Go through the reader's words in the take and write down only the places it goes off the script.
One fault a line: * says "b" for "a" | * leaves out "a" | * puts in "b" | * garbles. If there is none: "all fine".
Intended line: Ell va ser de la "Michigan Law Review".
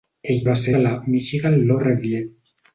all fine